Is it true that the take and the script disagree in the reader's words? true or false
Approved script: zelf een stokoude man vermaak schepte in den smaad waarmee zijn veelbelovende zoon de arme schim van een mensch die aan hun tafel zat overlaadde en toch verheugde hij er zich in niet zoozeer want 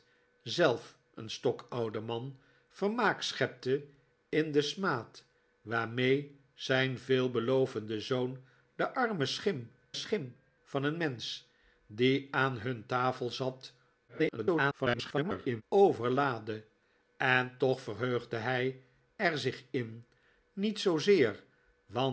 true